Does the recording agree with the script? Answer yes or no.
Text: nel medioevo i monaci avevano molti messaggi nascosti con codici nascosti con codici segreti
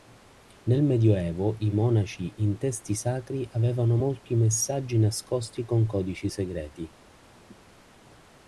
no